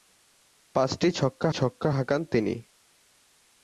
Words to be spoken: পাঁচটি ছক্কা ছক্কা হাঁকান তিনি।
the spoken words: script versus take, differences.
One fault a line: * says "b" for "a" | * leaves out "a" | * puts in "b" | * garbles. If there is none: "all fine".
all fine